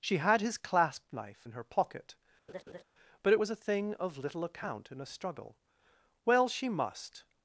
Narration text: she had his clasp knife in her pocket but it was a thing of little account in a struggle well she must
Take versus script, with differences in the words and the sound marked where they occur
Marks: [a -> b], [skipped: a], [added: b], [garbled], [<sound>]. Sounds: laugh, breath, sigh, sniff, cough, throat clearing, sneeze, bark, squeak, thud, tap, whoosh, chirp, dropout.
she had his clasp knife in her pocket [laugh] but it was a thing of little account in a struggle well she must